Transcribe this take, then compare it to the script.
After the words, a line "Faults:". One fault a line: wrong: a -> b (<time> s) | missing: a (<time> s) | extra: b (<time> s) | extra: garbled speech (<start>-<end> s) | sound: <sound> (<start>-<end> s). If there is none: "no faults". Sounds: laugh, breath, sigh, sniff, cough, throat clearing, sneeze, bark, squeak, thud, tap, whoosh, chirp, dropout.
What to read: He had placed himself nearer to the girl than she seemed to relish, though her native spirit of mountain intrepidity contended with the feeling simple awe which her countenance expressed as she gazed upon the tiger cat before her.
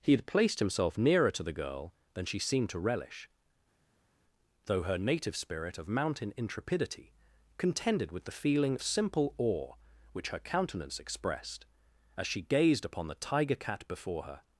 He had placed himself nearer to the girl than she seemed to relish, though her native spirit of mountain intrepidity contended with the feeling simple awe which her countenance expressed as she gazed upon the tiger cat before her.
Faults:
no faults